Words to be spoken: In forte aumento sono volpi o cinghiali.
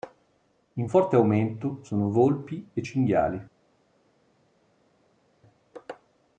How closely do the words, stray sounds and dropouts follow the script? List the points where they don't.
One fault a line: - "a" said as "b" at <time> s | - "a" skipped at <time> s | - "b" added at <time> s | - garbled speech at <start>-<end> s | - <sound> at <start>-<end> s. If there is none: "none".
- "o" said as "e" at 2.7 s